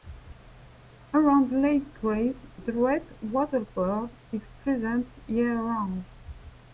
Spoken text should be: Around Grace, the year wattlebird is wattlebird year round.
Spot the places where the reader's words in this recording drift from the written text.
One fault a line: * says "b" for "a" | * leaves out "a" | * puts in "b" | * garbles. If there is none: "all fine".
* puts in "Lake"
* says "red" for "year"
* says "present" for "wattlebird"